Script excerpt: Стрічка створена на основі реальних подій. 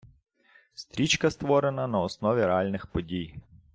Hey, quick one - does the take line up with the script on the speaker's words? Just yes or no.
yes